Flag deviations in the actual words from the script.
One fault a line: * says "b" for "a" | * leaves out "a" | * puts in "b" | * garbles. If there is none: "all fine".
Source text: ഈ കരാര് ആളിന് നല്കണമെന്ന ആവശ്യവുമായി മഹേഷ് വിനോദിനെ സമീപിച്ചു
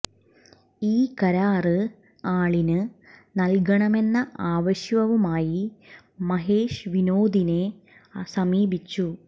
all fine